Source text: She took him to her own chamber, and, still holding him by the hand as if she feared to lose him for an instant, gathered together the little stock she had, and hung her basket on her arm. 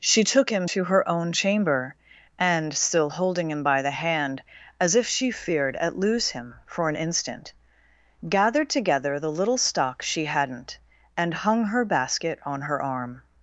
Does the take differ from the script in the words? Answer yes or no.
yes